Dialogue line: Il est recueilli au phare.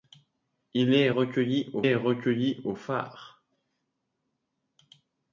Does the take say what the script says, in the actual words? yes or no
no